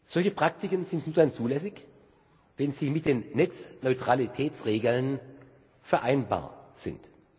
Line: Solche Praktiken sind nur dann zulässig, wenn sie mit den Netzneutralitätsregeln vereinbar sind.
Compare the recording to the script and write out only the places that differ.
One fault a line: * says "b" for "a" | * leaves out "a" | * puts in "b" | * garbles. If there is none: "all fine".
all fine